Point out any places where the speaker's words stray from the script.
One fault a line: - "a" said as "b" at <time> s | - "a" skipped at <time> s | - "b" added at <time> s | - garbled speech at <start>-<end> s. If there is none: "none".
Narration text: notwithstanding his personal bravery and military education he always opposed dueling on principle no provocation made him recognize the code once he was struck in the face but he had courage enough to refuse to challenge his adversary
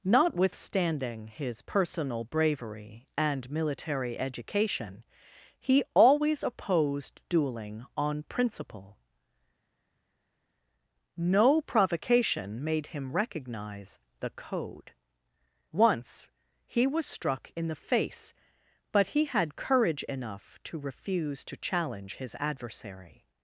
none